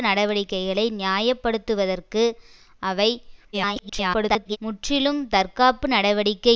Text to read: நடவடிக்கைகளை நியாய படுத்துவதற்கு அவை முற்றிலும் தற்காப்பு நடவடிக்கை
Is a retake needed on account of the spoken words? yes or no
yes